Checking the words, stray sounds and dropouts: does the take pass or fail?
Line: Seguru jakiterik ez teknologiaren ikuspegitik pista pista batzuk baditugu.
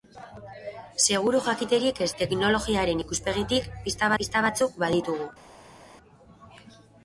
pass